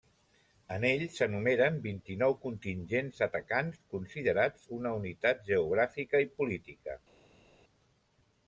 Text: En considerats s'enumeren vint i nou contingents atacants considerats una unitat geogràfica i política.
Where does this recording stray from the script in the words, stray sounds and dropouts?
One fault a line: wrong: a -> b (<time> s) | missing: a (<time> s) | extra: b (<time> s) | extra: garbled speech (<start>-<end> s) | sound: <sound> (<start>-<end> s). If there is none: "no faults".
wrong: considerats -> ell (0.9 s)